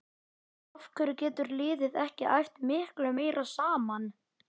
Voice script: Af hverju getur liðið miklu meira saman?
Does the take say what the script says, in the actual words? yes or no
no